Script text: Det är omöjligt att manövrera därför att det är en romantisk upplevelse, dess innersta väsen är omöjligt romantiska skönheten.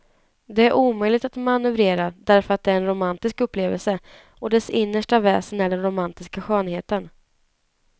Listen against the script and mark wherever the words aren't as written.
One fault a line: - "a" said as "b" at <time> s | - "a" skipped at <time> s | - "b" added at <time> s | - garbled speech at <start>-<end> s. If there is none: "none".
- "och" added at 4.4 s
- "omöjligt" said as "den" at 5.7 s